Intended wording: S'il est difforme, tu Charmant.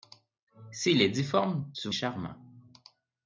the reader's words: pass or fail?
pass